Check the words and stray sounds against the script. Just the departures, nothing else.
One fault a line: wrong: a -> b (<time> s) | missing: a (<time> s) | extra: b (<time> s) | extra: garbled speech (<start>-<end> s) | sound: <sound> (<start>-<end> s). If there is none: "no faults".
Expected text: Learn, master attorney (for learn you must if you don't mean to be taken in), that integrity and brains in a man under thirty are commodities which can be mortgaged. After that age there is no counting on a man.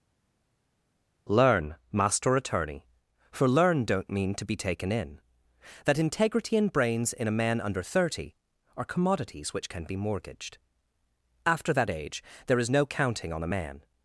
missing: you must if you (3.8 s)